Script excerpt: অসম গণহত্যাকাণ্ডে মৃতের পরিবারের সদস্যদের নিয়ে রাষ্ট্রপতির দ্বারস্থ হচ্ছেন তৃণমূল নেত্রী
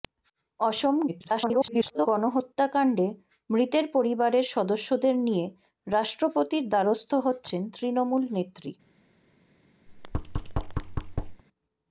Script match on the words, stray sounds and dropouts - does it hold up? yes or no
no